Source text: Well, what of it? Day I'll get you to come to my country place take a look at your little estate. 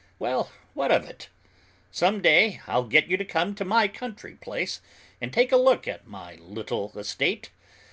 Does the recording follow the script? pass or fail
fail